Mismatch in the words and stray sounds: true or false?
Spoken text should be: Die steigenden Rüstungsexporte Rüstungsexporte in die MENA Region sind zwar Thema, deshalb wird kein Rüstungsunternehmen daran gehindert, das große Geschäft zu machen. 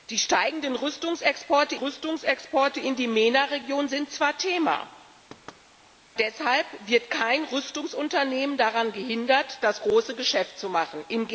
true